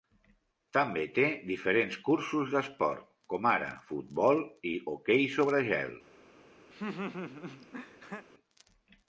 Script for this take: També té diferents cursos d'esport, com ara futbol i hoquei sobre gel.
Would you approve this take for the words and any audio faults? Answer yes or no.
no